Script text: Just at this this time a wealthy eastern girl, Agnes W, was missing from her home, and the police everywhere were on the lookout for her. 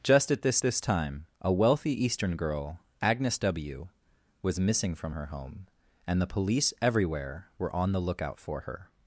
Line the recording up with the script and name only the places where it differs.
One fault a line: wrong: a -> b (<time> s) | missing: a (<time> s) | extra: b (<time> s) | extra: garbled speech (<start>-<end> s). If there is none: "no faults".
no faults